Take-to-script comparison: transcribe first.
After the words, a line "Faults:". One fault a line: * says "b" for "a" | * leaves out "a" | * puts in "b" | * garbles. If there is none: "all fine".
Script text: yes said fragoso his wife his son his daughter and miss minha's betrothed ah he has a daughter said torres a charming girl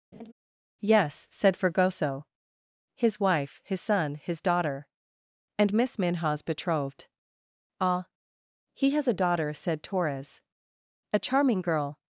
yes said fragoso his wife his son his daughter and miss minha's betrothed ah he has a daughter said torres a charming girl
Faults:
all fine